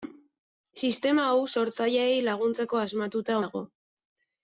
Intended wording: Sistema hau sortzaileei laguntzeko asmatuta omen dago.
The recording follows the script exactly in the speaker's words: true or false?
false